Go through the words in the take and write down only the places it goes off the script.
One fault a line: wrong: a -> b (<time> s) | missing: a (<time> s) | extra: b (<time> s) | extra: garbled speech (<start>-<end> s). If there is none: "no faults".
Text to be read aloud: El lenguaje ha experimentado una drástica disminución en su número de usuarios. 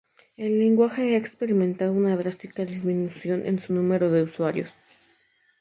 no faults